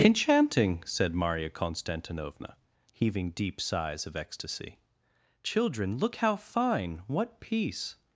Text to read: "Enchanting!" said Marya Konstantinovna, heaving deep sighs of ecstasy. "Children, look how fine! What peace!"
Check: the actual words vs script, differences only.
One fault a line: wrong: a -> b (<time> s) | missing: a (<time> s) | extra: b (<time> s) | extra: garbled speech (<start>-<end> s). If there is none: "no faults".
no faults